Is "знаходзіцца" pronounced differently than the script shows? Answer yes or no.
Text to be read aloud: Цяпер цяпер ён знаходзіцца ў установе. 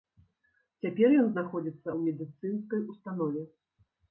no